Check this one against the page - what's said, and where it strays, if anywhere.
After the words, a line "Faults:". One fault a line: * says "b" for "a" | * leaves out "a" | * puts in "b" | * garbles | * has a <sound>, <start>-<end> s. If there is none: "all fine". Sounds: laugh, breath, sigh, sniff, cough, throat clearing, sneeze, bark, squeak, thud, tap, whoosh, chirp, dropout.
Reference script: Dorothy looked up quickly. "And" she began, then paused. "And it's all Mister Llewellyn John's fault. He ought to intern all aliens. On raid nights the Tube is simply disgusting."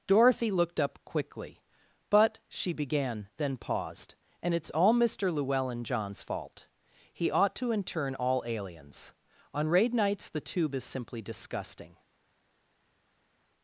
Dorothy looked up quickly. "But" she began, then paused. "And it's all Mister Llewellyn John's fault. He ought to intern all aliens. On raid nights the Tube is simply disgusting."
Faults:
* says "But" for "And"